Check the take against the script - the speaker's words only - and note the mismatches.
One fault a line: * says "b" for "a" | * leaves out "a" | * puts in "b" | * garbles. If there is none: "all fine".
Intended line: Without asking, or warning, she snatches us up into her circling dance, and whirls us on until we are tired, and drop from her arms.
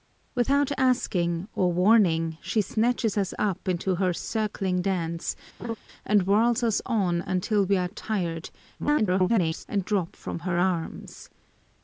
* garbles